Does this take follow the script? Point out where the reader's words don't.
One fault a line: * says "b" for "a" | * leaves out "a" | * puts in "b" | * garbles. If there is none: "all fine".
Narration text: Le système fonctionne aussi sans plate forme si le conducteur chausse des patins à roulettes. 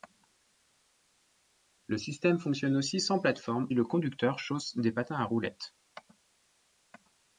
* leaves out "si"